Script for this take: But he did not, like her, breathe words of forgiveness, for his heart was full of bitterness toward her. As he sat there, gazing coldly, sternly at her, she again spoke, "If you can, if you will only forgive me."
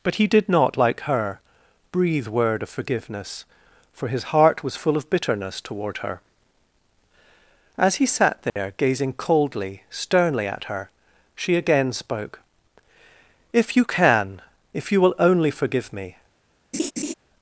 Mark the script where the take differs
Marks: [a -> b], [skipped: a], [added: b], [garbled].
But he did not, like her, breathe [words -> word] of forgiveness, for his heart was full of bitterness toward her. As he sat there, gazing coldly, sternly at her, she again spoke, "If you can, if you will only forgive me."